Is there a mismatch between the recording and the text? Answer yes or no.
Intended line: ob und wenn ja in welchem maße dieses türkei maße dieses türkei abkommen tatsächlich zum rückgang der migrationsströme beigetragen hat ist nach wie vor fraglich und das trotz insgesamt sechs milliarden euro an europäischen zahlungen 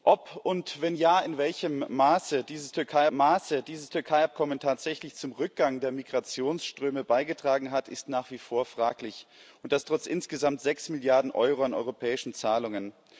no